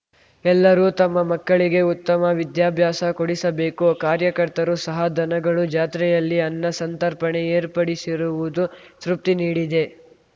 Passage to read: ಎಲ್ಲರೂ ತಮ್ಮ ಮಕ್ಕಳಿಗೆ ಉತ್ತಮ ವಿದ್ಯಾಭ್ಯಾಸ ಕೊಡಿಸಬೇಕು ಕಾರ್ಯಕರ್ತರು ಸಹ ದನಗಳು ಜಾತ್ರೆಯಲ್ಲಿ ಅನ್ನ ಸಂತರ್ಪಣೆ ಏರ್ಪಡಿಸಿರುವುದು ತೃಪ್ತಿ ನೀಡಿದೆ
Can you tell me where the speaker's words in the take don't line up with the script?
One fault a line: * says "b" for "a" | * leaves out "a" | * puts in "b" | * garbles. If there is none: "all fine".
all fine